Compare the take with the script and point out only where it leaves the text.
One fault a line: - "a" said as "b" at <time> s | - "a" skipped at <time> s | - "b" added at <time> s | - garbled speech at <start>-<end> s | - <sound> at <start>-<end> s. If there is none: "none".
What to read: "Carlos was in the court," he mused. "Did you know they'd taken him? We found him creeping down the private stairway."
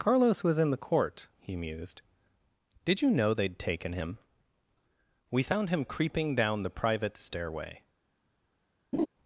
- laugh at 8.9-9.1 s